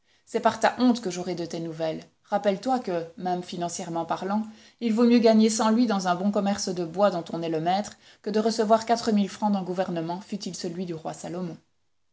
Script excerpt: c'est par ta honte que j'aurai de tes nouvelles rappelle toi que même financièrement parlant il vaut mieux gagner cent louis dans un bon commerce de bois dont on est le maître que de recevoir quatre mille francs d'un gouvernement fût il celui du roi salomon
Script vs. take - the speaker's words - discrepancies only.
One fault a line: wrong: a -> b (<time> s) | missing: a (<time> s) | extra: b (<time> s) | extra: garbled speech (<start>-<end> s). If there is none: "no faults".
no faults